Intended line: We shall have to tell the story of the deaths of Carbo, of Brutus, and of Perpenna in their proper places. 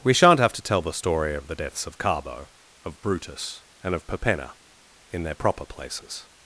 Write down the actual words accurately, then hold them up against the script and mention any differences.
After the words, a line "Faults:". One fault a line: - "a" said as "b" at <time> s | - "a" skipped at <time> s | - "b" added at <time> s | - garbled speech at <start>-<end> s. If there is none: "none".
We shan't have to tell the story of the deaths of Carbo, of Brutus, and of Perpenna in their proper places.
Faults:
- "shall" said as "shan't" at 0.1 s